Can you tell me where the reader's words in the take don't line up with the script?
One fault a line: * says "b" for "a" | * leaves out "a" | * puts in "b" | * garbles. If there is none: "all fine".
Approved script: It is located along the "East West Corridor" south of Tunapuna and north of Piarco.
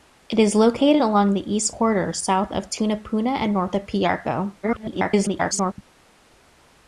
* leaves out "West"
* garbles